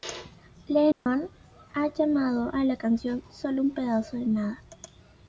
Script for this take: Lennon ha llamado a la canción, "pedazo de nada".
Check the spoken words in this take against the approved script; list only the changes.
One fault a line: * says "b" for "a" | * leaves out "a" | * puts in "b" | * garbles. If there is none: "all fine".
* puts in "solo un"